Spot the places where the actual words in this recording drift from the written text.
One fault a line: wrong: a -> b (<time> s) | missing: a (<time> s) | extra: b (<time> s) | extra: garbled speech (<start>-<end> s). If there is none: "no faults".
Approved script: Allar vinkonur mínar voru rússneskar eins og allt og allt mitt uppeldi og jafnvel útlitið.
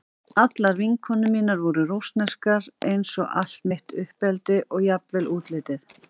missing: og allt (3.7 s)